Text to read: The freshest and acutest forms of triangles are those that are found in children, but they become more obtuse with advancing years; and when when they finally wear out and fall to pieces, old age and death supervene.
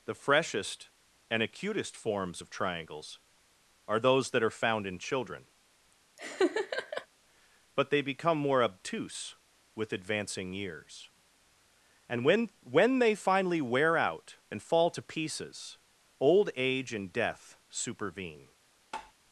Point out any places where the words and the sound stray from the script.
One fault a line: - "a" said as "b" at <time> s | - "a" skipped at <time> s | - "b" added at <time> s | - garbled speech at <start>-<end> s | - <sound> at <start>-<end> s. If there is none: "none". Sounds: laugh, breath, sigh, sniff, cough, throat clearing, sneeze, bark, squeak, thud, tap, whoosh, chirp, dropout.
- laugh at 6.2-7.1 s
- tap at 18.9-19.1 s